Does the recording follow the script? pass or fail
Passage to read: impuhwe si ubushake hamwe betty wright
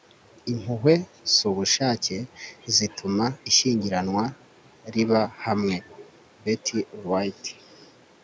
fail